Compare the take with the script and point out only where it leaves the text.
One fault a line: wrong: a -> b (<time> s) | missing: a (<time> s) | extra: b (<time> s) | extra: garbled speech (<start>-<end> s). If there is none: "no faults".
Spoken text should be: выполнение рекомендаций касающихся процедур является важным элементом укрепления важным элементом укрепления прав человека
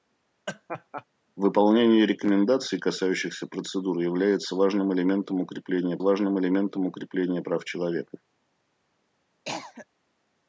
no faults